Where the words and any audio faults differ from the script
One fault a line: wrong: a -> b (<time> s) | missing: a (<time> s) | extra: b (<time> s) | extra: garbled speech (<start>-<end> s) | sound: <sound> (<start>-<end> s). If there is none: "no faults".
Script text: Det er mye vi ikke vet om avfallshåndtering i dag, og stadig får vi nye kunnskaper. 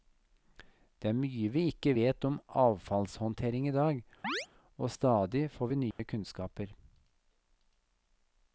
sound: chirp (4.2-4.5 s)
sound: dropout (5.9-6.0 s)